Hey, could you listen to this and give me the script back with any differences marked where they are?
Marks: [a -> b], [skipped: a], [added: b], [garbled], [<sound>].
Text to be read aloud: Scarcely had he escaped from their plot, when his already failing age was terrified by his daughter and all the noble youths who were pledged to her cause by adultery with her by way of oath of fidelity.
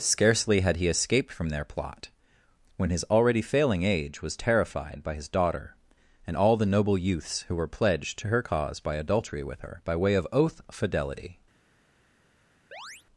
Scarcely had he escaped from their plot, when his already failing age was terrified by his daughter and all the noble youths who were pledged to her cause by adultery with her by way of oath [skipped: of] fidelity. [chirp]